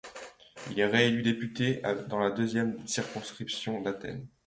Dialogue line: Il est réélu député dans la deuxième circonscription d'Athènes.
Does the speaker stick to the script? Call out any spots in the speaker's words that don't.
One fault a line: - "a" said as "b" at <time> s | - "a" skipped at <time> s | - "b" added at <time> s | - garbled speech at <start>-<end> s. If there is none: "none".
none